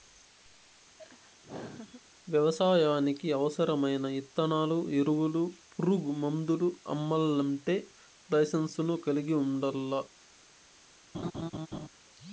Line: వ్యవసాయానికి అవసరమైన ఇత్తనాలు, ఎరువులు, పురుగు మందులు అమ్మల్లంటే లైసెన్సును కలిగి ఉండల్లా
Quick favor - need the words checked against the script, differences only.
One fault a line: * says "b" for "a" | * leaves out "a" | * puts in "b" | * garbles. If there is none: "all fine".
all fine